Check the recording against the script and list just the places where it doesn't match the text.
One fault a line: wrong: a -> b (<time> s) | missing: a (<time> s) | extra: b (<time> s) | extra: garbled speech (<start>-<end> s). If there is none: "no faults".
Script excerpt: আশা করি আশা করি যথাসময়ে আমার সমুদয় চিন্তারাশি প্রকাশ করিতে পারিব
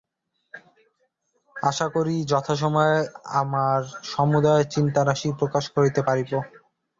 missing: আশা করি (2.2 s)